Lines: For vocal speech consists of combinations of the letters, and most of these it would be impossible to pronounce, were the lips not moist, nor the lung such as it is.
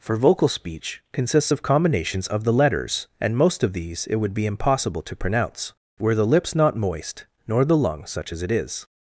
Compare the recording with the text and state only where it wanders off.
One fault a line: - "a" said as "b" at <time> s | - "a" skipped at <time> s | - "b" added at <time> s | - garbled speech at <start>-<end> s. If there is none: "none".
none